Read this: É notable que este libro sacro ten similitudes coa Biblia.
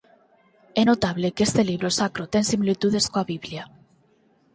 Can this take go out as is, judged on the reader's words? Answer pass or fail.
pass